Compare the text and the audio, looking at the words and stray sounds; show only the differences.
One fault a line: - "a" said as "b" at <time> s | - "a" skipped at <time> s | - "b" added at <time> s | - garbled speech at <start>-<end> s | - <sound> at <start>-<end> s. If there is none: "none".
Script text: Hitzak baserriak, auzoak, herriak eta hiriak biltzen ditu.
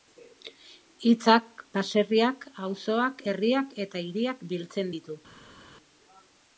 none